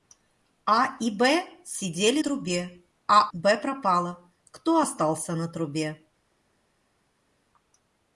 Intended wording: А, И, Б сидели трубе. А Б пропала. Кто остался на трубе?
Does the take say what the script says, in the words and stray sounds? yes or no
yes